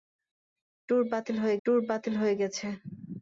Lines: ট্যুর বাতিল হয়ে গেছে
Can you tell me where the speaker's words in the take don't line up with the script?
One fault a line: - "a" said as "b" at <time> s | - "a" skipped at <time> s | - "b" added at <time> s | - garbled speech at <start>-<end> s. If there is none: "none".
- "ট্যুর বাতিল হয়ে" added at 1.7 s